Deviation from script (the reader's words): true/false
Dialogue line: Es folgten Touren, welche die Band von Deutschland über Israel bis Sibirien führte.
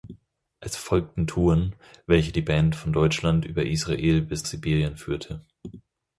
false